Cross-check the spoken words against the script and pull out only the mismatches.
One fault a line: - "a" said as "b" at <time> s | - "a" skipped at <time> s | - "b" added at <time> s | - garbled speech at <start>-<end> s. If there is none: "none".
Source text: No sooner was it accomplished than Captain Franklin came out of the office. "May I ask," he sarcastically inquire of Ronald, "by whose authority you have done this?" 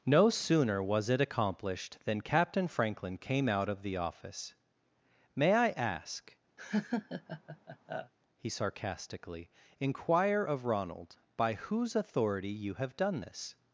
none